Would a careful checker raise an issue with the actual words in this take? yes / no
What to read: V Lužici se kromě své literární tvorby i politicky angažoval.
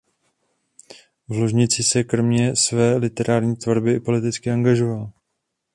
no